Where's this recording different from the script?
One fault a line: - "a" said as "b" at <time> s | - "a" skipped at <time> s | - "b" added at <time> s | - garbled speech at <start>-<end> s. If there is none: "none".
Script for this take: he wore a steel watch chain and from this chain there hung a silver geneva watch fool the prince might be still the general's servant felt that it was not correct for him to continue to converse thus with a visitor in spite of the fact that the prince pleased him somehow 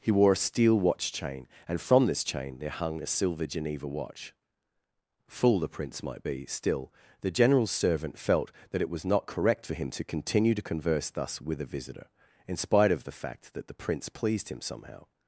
none